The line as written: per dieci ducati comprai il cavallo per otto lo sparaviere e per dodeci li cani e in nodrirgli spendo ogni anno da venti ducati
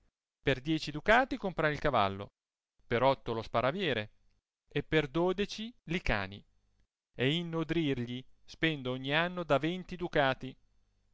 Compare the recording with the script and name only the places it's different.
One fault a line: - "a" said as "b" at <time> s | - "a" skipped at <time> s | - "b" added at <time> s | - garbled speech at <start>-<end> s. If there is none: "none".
none